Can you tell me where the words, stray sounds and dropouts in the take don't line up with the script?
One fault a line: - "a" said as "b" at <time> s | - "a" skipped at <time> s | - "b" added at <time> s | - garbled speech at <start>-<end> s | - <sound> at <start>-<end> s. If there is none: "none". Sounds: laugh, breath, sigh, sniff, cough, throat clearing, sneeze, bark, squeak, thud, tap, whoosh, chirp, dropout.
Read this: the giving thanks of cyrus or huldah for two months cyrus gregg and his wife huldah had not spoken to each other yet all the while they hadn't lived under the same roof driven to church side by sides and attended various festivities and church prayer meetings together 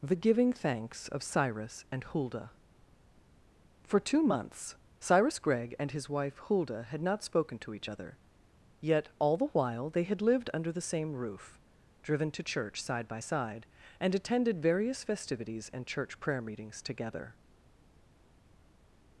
- "or" said as "and" at 1.9 s
- "hadn't" said as "had" at 10.0 s
- "sides" said as "side" at 13.2 s